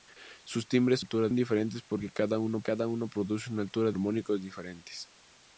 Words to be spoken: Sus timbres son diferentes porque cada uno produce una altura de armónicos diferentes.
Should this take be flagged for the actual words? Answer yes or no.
yes